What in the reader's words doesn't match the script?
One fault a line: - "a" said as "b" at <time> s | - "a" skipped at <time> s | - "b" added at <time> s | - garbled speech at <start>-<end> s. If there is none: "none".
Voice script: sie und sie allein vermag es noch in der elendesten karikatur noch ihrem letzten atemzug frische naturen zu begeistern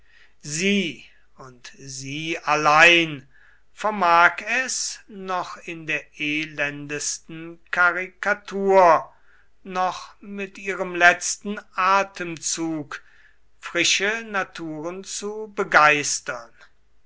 - "mit" added at 10.2 s